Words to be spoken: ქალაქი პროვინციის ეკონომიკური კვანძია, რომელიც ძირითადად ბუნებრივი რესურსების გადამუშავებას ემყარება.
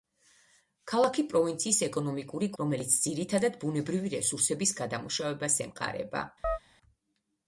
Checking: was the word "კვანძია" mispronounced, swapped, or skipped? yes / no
yes